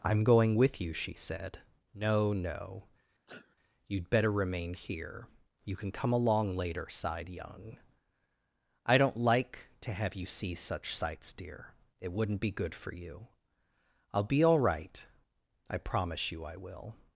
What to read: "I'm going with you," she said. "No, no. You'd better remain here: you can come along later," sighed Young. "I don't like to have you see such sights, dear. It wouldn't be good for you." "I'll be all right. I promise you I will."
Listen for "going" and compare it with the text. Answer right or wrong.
right